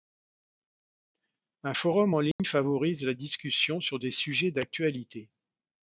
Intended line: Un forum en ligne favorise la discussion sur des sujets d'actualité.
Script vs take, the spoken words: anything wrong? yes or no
no